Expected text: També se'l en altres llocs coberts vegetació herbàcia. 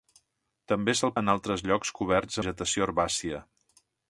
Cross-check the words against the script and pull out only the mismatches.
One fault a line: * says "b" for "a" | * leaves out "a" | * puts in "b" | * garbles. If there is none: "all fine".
all fine